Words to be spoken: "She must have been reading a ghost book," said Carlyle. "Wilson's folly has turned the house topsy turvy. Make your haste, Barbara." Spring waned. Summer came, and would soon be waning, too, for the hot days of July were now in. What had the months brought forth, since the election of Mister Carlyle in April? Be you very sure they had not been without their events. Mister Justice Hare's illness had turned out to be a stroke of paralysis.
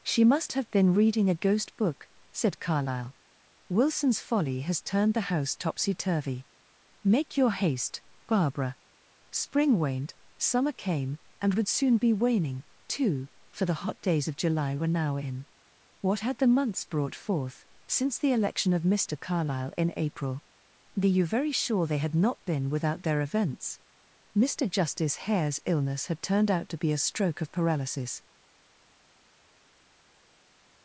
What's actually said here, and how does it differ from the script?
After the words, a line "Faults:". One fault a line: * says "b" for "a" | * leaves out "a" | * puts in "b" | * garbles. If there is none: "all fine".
"She must have been reading a ghost book," said Carlyle. "Wilson's folly has turned the house topsy turvy. Make your haste, Barbara." Spring waned. Summer came, and would soon be waning, too, for the hot days of July were now in. What had the months brought forth, since the election of Mister Carlyle in April? Be you very sure they had not been without their events. Mister Justice Hare's illness had turned out to be a stroke of paralysis.
Faults:
all fine